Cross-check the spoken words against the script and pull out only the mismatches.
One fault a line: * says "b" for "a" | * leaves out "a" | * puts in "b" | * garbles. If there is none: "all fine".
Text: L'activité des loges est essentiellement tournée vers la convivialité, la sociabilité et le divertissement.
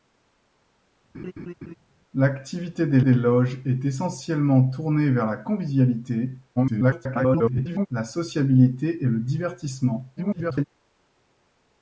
* puts in "des"
* garbles
* garbles